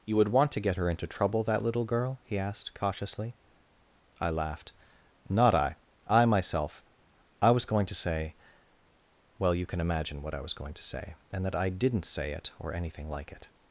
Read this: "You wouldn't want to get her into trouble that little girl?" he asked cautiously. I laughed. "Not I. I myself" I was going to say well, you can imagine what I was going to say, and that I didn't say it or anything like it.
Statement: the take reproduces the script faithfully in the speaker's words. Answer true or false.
false